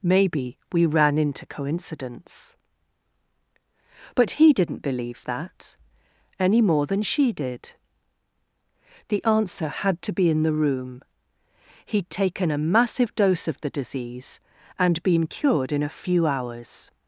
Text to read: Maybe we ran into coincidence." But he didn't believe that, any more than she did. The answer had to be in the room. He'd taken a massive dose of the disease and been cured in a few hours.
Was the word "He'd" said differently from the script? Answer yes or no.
no